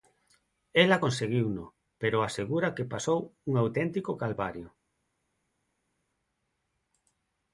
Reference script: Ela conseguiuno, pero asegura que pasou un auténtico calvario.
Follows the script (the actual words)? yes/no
yes